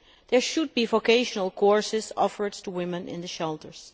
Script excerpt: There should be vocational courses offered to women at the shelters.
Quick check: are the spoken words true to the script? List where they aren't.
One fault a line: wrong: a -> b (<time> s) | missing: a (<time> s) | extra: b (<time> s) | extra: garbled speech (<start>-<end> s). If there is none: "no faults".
wrong: at -> in (3.1 s)